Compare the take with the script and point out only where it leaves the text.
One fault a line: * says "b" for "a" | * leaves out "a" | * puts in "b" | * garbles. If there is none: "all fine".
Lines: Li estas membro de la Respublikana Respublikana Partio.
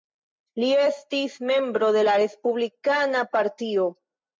* says "estis" for "estas"
* leaves out "Respublikana"